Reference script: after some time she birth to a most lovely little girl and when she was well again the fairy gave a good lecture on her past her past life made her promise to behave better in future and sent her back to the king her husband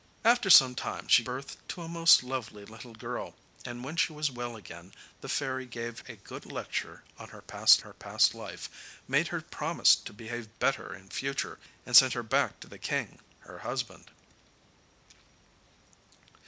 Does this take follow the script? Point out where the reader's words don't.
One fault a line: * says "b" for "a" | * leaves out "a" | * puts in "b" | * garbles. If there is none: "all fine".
all fine